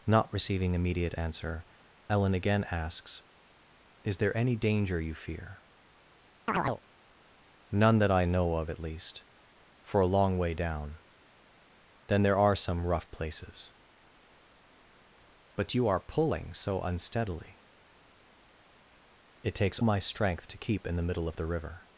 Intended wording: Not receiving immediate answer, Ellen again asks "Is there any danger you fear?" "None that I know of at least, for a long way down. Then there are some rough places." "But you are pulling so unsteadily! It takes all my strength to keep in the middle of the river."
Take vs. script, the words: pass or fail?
fail